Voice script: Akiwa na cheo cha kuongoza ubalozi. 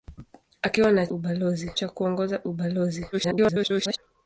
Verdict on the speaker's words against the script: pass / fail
fail